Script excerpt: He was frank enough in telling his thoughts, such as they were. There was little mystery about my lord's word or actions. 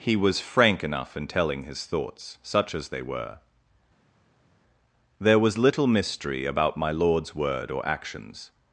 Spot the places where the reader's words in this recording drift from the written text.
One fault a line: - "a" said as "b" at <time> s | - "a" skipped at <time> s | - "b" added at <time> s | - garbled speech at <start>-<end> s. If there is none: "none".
none